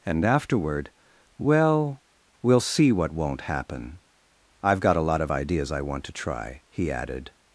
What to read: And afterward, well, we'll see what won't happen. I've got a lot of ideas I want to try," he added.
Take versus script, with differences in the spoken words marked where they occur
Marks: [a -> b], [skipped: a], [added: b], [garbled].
And afterward, well, we'll see what won't happen. I've got a lot of ideas I want to try," he added.